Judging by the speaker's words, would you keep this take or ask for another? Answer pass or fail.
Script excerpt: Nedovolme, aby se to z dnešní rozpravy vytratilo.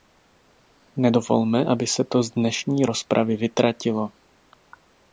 pass